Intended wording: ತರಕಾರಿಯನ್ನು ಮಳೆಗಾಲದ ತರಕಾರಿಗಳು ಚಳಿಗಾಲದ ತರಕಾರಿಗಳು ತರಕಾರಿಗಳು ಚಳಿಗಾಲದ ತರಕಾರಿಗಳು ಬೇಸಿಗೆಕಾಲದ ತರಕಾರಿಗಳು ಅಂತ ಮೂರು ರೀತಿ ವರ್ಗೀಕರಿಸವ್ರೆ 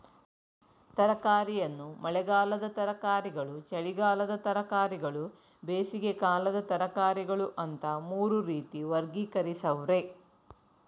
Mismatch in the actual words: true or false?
true